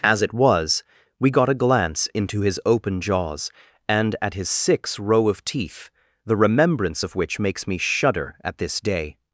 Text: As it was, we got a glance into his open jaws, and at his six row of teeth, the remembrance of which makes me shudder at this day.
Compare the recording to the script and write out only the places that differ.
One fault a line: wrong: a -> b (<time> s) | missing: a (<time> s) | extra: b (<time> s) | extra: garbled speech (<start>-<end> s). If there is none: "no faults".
no faults